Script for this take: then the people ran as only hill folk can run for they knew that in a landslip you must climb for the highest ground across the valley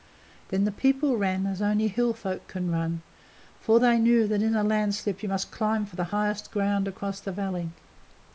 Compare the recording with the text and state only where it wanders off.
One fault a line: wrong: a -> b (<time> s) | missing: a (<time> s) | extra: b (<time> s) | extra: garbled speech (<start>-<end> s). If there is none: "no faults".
no faults